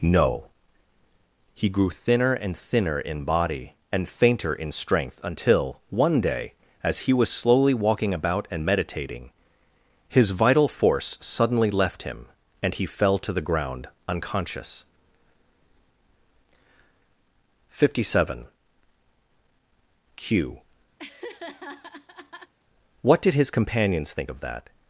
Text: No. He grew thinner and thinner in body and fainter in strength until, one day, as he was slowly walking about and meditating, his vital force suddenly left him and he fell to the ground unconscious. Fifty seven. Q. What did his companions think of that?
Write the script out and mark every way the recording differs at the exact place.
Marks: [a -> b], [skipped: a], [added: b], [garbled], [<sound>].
No. He grew thinner and thinner in body and fainter in strength until, one day, as he was slowly walking about and meditating, his vital force suddenly left him and he fell to the ground unconscious. Fifty seven. Q. [laugh] What did his companions think of that?